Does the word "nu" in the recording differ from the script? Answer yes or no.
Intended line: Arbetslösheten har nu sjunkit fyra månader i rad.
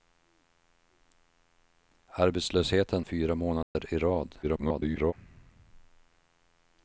yes